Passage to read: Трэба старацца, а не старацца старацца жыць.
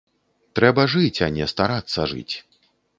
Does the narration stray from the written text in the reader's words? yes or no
yes